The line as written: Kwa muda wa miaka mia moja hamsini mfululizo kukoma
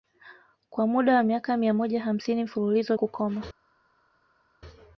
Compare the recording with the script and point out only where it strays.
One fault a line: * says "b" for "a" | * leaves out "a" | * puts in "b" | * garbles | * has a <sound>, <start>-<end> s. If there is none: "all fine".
all fine